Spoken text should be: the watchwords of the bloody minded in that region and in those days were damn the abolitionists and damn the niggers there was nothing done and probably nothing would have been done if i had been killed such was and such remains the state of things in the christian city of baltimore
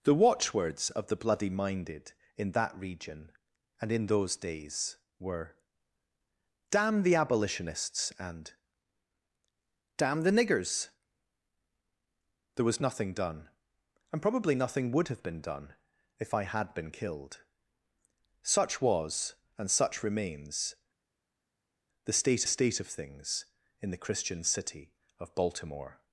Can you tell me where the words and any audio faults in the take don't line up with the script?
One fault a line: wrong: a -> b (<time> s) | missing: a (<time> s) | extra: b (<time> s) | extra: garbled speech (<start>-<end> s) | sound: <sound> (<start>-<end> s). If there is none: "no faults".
extra: state (22.5 s)